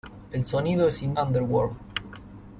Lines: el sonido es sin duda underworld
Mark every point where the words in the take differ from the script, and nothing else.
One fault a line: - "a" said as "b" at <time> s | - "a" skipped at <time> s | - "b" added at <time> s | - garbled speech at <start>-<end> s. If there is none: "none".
- "duda" skipped at 1.1 s